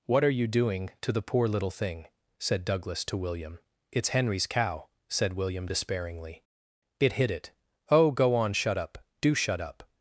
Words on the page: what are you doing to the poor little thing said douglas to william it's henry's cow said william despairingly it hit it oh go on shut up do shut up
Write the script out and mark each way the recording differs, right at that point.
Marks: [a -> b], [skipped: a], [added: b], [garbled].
what are you doing to the poor little thing said douglas to william it's henry's cow said william despairingly it hit it oh go on shut up do shut up